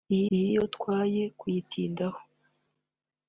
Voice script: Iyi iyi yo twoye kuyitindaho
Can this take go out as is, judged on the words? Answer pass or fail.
pass